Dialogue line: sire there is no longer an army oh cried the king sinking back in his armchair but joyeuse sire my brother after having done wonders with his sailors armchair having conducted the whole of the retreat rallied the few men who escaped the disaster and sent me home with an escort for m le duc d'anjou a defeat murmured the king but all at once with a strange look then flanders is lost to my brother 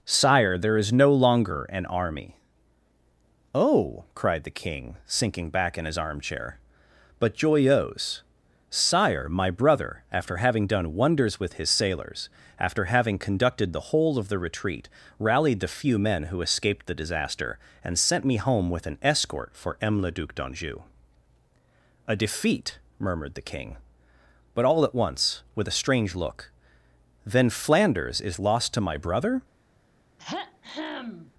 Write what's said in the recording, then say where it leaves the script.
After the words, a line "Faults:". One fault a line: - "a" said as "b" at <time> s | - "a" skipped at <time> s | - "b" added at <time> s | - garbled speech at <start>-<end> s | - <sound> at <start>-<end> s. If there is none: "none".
sire there is no longer an army oh cried the king sinking back in his armchair but joyeuse sire my brother after having done wonders with his sailors after having conducted the whole of the retreat rallied the few men who escaped the disaster and sent me home with an escort for m le duc d'anjou a defeat murmured the king but all at once with a strange look then flanders is lost to my brother
Faults:
- "armchair" said as "after" at 12.6 s
- throat clearing at 30.2-31.3 s